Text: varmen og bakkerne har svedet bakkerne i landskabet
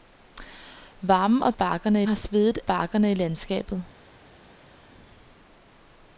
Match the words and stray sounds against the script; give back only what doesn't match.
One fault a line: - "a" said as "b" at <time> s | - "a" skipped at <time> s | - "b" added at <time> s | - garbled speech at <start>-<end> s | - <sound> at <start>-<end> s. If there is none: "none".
none